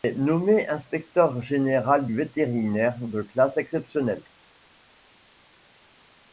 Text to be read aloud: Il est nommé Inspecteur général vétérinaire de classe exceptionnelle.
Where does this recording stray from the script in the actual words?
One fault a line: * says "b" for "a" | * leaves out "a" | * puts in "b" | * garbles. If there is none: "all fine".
all fine